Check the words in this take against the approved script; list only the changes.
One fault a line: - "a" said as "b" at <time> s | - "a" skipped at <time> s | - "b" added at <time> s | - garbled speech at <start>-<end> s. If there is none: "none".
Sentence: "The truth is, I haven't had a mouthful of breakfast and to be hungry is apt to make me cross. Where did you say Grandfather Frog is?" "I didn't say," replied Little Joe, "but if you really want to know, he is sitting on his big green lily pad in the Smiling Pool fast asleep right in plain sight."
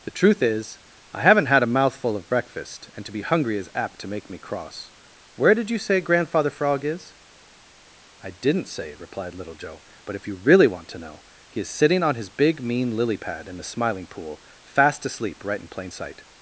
- "green" said as "mean" at 12.6 s